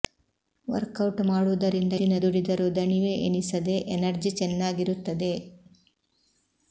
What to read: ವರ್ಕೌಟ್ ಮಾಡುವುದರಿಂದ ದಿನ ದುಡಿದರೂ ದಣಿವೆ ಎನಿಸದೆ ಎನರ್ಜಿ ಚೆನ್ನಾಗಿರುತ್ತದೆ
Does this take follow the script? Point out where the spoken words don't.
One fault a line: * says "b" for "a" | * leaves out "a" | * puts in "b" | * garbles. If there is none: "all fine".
all fine